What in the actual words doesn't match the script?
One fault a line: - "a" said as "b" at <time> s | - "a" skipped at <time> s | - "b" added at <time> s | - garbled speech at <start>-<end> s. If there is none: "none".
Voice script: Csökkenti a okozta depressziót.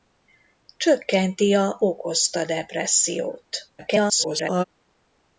- garbled speech at 3.8-4.6 s